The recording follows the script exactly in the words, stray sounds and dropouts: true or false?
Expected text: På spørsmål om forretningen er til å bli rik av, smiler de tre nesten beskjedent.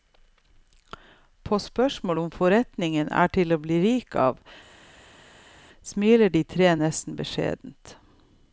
true